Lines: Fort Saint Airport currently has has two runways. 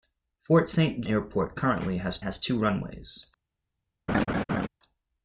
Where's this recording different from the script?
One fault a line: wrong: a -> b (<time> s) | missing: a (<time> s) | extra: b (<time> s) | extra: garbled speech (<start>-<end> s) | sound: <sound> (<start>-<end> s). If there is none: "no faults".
sound: laugh (4.1-4.7 s)